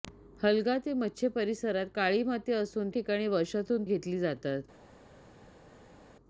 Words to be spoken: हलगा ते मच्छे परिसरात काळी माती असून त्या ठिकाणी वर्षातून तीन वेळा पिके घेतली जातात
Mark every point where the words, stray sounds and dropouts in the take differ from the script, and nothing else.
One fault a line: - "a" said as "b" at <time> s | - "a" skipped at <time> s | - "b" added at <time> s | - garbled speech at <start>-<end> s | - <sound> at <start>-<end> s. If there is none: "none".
- "त्या" skipped at 2.9 s
- "तीन वेळा पिके" skipped at 3.8 s